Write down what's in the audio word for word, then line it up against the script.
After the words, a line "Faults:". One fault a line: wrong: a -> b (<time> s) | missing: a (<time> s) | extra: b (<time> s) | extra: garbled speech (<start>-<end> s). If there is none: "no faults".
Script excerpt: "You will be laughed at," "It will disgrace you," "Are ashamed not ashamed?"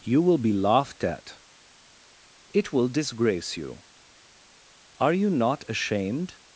"You will be laughed at," "It will disgrace you," "Are you not ashamed?"
Faults:
wrong: ashamed -> you (5.1 s)